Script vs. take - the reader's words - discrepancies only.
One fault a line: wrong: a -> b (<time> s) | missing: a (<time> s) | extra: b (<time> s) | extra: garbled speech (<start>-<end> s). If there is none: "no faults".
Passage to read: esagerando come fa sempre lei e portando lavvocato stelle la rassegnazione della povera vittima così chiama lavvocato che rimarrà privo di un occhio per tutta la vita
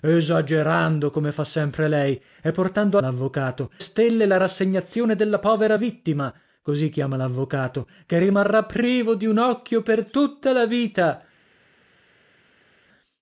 no faults